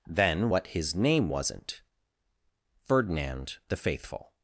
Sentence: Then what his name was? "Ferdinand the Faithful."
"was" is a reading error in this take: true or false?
true